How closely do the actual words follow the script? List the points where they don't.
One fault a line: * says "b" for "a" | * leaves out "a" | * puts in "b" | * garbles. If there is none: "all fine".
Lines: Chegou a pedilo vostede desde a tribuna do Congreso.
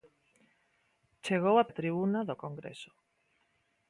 * leaves out "pedilo vostede desde"